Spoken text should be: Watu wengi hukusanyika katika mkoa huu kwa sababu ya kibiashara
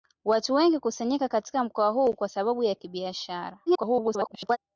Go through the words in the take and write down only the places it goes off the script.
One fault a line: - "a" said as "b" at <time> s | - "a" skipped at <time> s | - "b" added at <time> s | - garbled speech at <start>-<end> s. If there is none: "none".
- garbled speech at 3.7-4.6 s